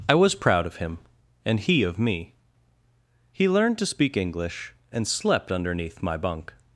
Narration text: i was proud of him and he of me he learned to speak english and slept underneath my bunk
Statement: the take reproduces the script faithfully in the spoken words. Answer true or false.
true